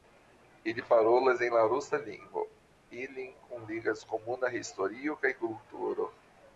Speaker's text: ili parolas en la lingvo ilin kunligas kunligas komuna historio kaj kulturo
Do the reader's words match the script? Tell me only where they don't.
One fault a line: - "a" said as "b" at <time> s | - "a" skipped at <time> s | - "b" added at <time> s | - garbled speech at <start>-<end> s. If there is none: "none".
- "rusa" added at 1.7 s
- "kunligas" skipped at 4.1 s